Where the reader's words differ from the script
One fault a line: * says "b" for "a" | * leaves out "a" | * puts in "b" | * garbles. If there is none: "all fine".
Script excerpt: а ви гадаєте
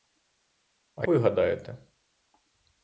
all fine